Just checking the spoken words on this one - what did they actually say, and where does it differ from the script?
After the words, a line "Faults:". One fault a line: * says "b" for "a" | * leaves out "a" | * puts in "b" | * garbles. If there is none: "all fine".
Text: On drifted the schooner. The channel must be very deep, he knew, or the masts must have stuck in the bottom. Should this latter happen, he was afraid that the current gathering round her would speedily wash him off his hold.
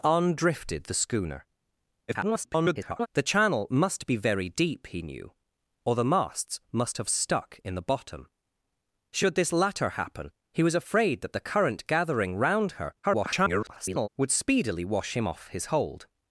On drifted the schooner. [garbled] The channel must be very deep, he knew, or the masts must have stuck in the bottom. Should this latter happen, he was afraid that the current gathering round her [garbled] would speedily wash him off his hold.
Faults:
* garbles
* garbles